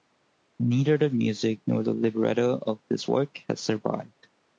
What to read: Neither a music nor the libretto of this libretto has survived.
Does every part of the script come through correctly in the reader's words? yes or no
no